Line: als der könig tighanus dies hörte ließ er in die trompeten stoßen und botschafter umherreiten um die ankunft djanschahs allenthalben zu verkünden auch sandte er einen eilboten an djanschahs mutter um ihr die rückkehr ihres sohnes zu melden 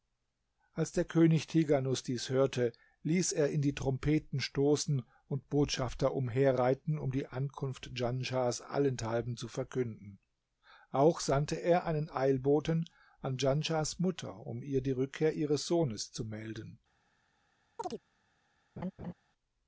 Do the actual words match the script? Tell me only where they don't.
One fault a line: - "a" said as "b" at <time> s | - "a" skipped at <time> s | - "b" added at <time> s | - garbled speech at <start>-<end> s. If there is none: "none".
none